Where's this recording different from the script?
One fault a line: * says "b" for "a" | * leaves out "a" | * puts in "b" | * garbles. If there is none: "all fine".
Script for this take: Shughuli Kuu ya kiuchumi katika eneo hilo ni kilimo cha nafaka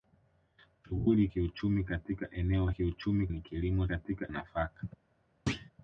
* leaves out "Kuu ya"
* says "kiuchumi" for "hilo"
* says "katika" for "cha"